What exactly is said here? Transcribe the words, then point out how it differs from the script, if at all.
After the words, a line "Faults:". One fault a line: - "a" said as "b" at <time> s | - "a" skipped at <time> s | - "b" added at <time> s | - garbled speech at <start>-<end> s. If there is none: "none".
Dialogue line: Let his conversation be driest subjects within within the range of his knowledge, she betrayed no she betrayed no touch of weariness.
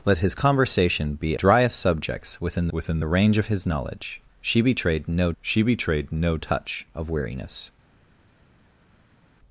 Let his conversation be driest subjects within within the range of his knowledge, she betrayed no she betrayed no touch of weariness.
Faults:
none